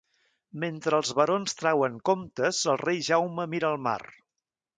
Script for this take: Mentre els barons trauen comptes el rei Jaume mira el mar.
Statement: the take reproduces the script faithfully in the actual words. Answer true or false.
true